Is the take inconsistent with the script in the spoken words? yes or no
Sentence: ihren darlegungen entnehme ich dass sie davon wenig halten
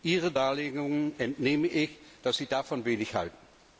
no